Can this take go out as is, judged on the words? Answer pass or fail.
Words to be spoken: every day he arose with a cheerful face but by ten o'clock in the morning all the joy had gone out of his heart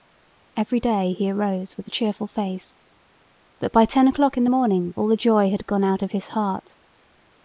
pass